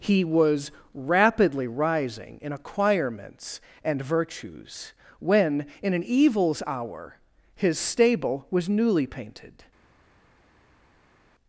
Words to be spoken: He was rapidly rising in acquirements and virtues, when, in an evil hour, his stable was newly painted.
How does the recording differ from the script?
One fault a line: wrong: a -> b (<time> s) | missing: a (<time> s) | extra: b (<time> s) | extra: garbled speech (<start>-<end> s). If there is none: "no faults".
wrong: evil -> evils (6.0 s)